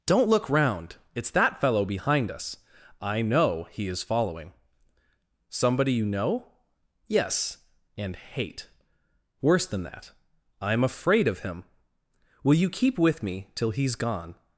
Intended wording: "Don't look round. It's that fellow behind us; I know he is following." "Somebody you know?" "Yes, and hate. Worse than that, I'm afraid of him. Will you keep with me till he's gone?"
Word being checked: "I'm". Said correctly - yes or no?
yes